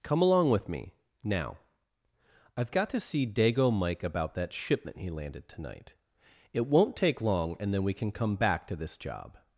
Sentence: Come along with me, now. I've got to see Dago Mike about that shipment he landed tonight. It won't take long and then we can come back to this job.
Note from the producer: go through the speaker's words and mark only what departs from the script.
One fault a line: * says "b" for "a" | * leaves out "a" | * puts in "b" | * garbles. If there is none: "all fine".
all fine